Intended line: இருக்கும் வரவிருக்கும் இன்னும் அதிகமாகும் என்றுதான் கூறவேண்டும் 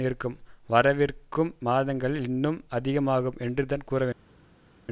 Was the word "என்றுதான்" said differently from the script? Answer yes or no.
no